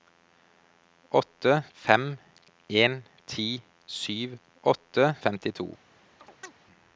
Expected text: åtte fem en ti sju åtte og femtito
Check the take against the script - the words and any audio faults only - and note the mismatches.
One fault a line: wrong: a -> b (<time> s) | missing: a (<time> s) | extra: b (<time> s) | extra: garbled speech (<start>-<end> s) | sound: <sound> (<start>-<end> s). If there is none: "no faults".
sound: chirp (6.2-6.6 s)